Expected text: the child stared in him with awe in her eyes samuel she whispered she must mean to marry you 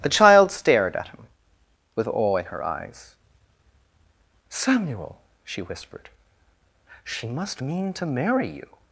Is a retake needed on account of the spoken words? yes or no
yes